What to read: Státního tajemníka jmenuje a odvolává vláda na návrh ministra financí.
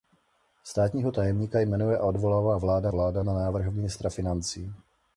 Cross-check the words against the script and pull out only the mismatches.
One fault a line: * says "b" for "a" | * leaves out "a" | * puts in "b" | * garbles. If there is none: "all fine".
* puts in "vláda"